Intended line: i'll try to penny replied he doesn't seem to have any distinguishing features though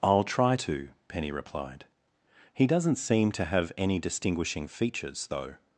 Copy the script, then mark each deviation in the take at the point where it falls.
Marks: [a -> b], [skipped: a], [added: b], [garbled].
i'll try to penny replied he doesn't seem to have any distinguishing features though